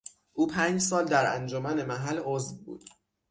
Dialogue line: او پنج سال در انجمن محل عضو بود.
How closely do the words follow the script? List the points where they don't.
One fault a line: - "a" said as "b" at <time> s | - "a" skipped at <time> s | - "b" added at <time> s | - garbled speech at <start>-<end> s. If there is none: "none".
none